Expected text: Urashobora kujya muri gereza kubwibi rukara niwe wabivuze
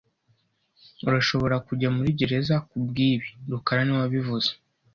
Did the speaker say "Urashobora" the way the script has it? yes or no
yes